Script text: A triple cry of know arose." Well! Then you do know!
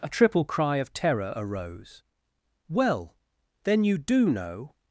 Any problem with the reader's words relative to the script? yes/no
yes